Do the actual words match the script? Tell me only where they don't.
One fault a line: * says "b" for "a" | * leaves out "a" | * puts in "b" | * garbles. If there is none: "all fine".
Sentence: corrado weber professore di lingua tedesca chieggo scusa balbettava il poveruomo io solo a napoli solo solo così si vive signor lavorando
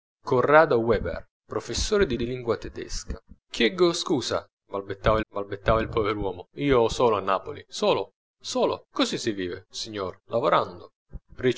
* puts in "di"
* puts in "balbettava"